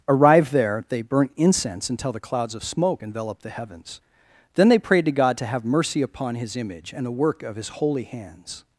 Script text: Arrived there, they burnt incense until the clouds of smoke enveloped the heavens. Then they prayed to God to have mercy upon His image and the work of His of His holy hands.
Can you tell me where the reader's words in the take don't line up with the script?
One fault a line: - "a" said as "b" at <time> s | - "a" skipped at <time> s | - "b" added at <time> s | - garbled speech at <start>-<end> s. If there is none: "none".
- "of His" skipped at 7.7 s